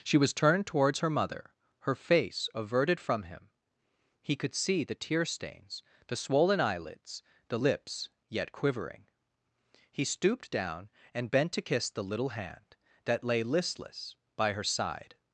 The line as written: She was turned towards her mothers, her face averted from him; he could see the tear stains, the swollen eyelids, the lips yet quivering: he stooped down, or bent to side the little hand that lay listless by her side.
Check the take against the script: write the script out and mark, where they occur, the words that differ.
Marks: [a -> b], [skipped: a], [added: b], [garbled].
She was turned towards her [mothers, -> mother] her face averted from him; he could see the tear stains, the swollen eyelids, the lips yet quivering: he stooped down, [or -> and] bent to [side -> kiss] the little hand that lay listless by her side.